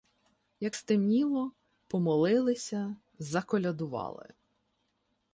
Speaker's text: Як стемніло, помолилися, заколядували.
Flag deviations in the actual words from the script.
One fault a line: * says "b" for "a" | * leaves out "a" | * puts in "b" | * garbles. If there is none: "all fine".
all fine